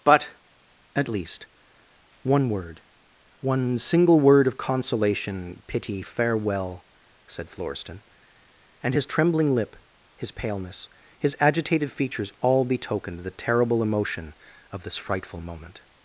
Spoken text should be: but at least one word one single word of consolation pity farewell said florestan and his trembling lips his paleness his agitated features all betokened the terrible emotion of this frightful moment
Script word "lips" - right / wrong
wrong